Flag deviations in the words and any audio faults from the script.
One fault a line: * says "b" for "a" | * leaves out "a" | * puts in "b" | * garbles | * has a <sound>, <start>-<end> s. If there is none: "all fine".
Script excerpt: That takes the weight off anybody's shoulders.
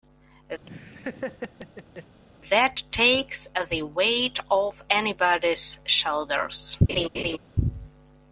* has a laugh, 0.6-2.2 s
* has a laugh, 6.9-7.4 s